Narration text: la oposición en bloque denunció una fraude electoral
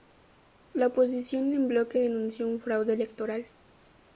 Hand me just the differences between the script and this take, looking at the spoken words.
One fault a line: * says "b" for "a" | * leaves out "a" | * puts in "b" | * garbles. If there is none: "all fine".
* says "un" for "una"